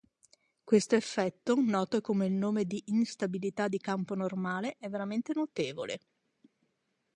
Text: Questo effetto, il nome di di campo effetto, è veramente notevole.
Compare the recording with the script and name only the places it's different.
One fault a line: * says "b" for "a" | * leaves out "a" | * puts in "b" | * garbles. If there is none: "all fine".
* puts in "noto con"
* puts in "instabilità"
* says "normale" for "effetto"